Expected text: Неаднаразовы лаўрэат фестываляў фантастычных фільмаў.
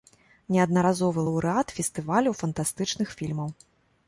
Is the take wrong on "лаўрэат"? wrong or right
right